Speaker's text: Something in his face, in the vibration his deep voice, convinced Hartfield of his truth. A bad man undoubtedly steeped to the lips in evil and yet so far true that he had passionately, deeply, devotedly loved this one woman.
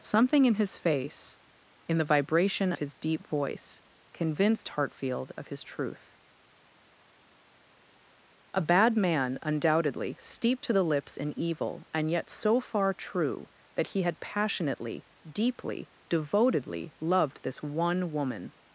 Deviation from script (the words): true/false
false